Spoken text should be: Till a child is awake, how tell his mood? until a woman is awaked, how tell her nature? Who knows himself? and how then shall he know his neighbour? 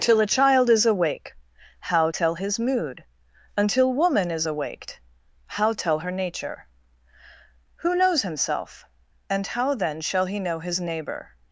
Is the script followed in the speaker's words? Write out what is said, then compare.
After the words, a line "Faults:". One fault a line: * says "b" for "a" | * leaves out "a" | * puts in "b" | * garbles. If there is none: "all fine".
Till a child is awake, how tell his mood? until woman is awaked, how tell her nature? Who knows himself? and how then shall he know his neighbour?
Faults:
* leaves out "a"